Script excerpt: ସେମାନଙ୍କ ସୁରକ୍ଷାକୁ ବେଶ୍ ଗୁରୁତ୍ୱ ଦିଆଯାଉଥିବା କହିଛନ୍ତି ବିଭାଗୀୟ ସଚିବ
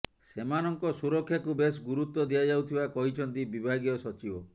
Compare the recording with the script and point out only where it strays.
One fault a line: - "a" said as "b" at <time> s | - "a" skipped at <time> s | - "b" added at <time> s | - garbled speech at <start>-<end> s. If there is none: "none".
none